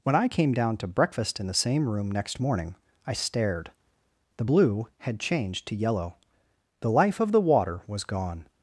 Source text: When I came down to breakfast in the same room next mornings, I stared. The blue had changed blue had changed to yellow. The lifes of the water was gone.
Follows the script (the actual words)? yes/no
no